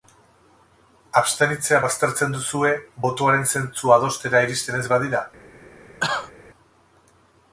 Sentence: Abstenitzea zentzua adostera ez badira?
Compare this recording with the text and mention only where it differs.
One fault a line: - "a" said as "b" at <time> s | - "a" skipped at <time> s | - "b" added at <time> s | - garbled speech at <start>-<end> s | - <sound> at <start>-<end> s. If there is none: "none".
- "baztertzen duzue botoaren" added at 1.8 s
- "iristen" added at 4.5 s
- cough at 6.0-6.3 s